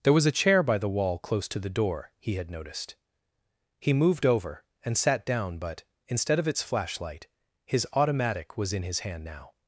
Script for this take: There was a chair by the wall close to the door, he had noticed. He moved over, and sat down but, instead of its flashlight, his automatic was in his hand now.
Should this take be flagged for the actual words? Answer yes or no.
no